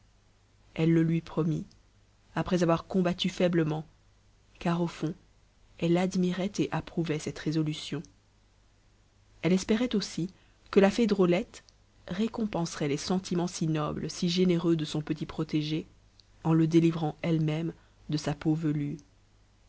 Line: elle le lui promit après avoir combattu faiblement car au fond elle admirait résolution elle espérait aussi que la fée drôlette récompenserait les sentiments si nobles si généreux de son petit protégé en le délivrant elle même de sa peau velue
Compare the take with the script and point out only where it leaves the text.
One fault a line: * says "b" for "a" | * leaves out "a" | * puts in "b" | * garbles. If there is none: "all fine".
* puts in "et approuvait cette"